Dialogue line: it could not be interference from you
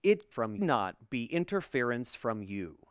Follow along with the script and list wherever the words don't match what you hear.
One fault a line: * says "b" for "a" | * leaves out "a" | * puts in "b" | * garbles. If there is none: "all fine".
* says "from" for "could"